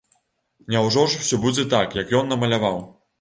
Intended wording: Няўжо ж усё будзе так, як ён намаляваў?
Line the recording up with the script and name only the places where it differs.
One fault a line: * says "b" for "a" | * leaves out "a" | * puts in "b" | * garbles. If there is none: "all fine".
all fine